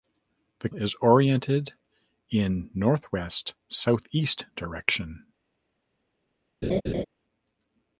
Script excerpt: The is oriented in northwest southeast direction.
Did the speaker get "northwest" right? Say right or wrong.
right